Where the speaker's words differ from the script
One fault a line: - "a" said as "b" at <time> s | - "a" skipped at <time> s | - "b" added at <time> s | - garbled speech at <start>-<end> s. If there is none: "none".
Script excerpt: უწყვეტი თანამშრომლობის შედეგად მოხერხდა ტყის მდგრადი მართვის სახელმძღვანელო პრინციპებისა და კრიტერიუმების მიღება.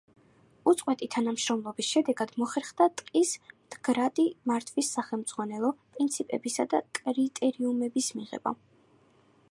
none